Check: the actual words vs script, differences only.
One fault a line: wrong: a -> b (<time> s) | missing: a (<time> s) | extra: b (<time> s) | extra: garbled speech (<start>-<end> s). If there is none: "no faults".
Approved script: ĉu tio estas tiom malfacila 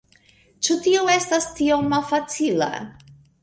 no faults